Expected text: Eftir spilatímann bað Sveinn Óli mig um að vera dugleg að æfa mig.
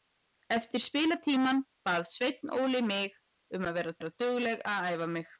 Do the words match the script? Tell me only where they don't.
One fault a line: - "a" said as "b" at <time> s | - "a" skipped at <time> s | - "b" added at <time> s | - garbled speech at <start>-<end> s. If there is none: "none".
- "vera" added at 4.0 s